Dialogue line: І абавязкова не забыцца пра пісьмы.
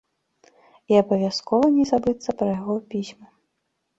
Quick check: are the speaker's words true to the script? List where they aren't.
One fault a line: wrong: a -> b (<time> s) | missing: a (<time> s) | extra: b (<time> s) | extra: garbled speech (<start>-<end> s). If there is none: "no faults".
extra: яго (2.6 s)